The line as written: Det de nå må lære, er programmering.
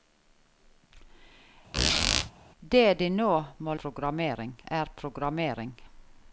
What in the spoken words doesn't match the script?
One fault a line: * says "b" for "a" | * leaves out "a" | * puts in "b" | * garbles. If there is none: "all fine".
* says "programmering" for "lære"